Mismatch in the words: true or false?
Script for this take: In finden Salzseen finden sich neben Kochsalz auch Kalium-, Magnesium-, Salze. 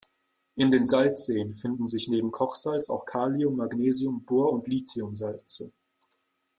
true